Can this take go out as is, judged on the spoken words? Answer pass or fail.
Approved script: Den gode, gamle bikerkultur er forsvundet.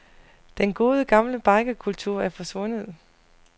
pass